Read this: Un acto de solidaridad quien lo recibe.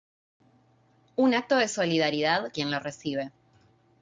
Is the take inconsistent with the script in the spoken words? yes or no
no